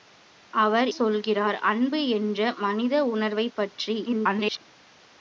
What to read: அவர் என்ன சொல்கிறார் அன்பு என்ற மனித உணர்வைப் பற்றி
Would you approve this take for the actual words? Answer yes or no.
no